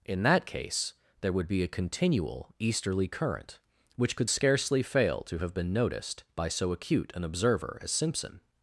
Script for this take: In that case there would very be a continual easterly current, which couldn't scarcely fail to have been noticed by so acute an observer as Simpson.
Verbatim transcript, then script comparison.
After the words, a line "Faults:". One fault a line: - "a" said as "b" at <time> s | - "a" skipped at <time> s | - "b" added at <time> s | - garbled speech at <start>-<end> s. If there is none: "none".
In that case there would be a continual easterly current, which could scarcely fail to have been noticed by so acute an observer as Simpson.
Faults:
- "very" skipped at 1.5 s
- "couldn't" said as "could" at 4.2 s